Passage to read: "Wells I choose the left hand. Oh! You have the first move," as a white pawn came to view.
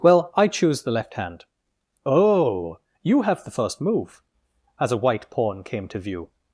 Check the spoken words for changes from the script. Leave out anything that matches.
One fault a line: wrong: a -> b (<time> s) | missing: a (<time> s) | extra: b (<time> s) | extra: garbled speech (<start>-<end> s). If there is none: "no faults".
wrong: Wells -> Well (0.0 s)